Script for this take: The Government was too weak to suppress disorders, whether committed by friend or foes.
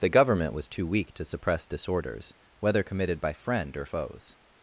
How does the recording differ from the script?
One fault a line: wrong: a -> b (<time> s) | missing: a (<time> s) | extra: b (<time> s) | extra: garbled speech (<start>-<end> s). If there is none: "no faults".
no faults